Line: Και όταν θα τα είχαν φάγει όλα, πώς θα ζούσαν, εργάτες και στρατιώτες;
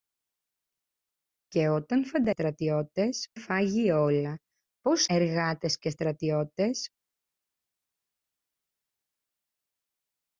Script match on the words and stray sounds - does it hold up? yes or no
no